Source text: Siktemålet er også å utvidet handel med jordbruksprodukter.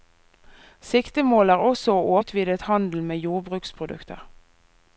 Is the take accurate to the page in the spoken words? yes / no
yes